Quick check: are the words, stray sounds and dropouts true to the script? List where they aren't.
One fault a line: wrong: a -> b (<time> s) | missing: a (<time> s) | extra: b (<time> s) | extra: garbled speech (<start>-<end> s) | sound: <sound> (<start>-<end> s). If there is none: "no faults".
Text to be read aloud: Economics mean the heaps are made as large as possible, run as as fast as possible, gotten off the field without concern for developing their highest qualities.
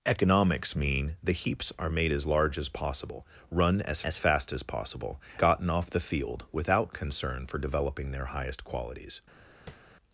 sound: tap (9.7-9.8 s)